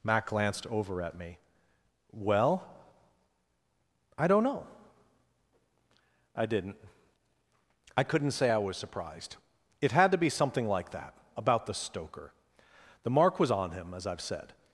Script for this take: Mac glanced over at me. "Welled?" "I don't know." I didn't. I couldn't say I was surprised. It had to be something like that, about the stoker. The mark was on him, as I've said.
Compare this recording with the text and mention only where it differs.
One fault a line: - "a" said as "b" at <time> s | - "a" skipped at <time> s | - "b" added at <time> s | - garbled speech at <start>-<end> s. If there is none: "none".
- "Welled" said as "Well" at 2.1 s